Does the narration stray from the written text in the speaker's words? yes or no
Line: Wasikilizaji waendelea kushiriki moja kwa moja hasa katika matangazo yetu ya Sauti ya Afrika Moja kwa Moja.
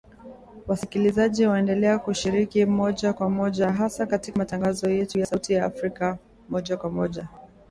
no